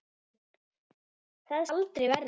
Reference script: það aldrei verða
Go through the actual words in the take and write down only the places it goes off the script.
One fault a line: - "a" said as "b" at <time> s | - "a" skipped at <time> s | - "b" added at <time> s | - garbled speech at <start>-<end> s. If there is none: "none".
none